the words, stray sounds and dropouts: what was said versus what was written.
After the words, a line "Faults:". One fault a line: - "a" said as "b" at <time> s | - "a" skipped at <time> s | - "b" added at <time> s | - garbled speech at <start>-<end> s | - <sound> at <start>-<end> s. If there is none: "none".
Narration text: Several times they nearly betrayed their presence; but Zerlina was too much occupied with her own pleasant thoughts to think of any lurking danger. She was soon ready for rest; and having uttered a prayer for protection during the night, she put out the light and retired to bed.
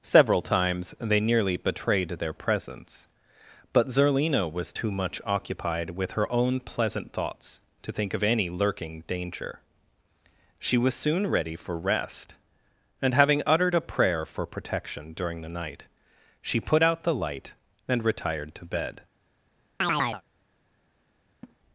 Several times they nearly betrayed their presence; but Zerlina was too much occupied with her own pleasant thoughts to think of any lurking danger. She was soon ready for rest; and having uttered a prayer for protection during the night, she put out the light and retired to bed.
Faults:
- chirp at 19.8-20.2 s
- laugh at 21.4-21.6 s